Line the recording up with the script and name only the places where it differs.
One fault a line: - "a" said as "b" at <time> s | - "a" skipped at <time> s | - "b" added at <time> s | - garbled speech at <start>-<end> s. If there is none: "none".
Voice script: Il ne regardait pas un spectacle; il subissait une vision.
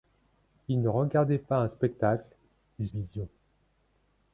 - "subissait une" skipped at 2.9 s